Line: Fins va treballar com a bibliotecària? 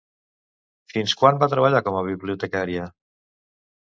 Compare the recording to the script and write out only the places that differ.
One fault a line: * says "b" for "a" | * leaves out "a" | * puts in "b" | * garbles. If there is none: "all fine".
* puts in "quan"